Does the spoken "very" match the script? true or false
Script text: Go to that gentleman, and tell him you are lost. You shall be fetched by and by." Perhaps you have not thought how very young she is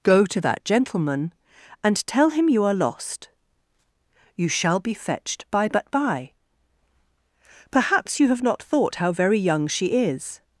true